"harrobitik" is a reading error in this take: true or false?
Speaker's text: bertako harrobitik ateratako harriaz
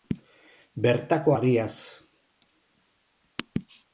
true